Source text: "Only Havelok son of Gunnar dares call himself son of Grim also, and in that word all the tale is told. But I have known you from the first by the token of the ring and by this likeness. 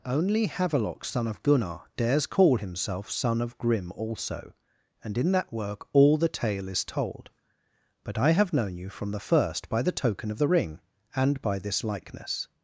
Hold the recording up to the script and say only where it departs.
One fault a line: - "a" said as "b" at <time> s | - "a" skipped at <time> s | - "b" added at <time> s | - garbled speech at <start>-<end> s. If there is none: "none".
- "word" said as "work" at 5.5 s